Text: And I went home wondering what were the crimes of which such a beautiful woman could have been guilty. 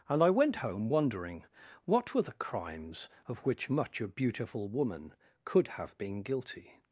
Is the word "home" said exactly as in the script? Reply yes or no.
yes